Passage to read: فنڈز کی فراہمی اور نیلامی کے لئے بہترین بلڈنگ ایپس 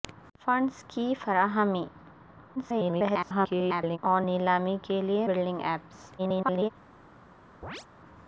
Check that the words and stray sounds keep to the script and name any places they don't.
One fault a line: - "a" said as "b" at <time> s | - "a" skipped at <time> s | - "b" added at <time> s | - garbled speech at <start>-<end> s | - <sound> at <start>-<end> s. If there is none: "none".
- garbled speech at 2.6-4.0 s
- "بہترین" skipped at 5.3 s
- garbled speech at 6.2-6.7 s
- chirp at 7.6-7.9 s